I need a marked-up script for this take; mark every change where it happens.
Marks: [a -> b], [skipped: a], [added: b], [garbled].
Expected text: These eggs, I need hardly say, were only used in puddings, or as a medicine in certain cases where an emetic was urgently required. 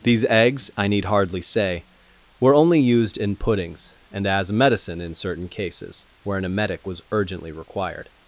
These eggs, I need hardly say, were only used in puddings, [or -> and] as a medicine in certain cases where an emetic was urgently required.